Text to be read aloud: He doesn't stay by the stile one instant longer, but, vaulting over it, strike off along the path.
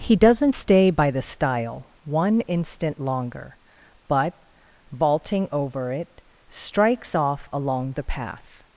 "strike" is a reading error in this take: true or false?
true